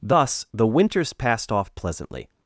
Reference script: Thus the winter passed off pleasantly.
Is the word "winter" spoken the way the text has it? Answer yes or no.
no